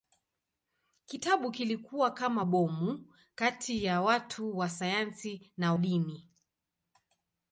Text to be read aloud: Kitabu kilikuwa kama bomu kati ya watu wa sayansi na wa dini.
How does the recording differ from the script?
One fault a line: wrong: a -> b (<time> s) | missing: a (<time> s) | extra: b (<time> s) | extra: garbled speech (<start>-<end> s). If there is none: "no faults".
missing: wa (5.7 s)